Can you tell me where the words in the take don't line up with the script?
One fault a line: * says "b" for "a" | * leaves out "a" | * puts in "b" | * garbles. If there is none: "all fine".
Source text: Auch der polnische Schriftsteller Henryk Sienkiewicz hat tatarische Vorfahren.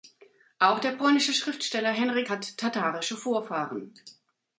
* leaves out "Sienkiewicz"